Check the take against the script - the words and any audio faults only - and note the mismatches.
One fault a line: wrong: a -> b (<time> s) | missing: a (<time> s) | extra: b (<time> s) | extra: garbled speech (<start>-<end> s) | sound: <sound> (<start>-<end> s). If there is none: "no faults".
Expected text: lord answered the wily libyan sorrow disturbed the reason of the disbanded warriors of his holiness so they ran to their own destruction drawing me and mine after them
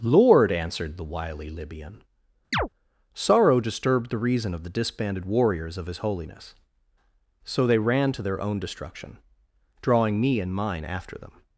sound: chirp (2.5-2.7 s)